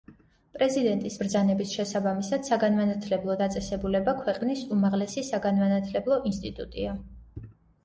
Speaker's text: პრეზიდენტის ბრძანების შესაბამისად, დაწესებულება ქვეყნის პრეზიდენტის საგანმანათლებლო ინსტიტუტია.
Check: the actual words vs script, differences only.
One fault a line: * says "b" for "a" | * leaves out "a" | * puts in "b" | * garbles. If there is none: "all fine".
* puts in "საგანმანათლებლო"
* says "უმაღლესი" for "პრეზიდენტის"